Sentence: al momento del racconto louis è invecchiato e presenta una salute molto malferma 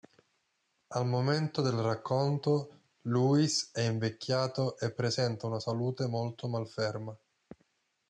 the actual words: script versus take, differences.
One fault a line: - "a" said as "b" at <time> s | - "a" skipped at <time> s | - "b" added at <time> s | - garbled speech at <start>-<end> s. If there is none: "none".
none